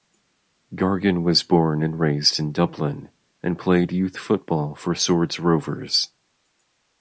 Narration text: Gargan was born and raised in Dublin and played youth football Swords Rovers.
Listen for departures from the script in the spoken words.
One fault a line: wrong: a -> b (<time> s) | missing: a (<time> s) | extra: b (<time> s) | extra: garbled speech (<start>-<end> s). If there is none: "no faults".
extra: for (4.7 s)